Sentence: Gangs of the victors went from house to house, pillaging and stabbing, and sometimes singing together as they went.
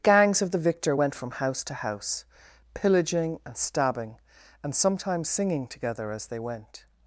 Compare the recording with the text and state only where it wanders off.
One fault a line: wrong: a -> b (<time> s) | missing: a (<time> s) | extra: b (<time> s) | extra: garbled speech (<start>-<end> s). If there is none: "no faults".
wrong: victors -> victor (0.6 s)